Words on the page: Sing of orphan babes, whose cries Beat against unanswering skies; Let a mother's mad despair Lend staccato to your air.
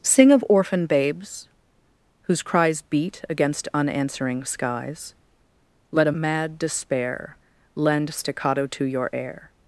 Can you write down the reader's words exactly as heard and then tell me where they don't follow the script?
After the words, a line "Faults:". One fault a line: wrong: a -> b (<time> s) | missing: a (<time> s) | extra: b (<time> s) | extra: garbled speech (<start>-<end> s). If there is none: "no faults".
Sing of orphan babes, whose cries Beat against unanswering skies; Let a mad despair Lend staccato to your air.
Faults:
missing: mother's (6.1 s)